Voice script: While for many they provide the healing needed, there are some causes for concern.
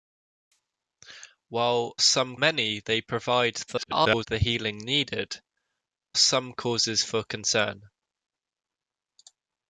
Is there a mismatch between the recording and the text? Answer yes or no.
yes